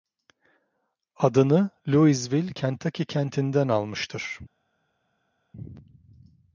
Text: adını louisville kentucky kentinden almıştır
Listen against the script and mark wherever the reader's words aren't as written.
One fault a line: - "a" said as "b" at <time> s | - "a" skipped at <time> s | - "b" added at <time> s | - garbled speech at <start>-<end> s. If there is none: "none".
none